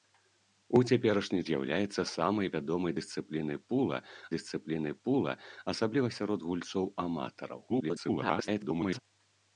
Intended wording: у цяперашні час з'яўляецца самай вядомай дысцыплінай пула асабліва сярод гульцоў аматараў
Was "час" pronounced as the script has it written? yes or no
no